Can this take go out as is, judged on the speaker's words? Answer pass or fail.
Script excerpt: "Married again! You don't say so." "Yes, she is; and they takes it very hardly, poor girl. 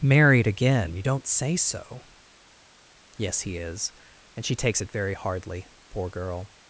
fail